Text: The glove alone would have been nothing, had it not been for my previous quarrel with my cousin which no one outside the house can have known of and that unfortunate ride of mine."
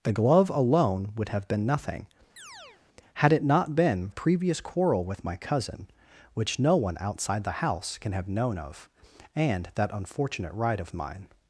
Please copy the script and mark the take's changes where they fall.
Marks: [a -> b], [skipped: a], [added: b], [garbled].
The glove alone would have been nothing, had it not been [skipped: for my] previous quarrel with my cousin which no one outside the house can have known of and that unfortunate ride of mine."